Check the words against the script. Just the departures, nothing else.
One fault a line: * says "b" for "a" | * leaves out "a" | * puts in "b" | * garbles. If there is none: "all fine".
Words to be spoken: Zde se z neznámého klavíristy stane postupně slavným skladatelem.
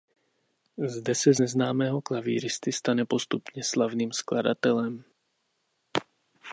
all fine